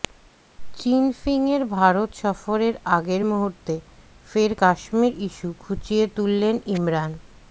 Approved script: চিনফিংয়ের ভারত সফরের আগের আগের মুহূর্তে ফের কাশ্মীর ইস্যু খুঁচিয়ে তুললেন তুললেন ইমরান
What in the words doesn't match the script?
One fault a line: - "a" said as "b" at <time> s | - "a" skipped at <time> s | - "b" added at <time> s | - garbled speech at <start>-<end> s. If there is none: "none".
- "আগের" skipped at 3.2 s
- "তুললেন" skipped at 6.6 s